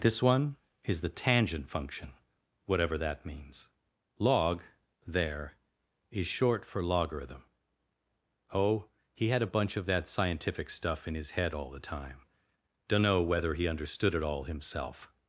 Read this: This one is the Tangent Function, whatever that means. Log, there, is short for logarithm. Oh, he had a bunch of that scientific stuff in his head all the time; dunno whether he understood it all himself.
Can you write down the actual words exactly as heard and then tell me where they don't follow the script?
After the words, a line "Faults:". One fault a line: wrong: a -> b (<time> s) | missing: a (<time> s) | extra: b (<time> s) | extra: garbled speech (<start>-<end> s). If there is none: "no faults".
This one is the Tangent Function, whatever that means. Log, there, is short for logarithm. Oh, he had a bunch of that scientific stuff in his head all the time; dunno whether he understood it all himself.
Faults:
no faults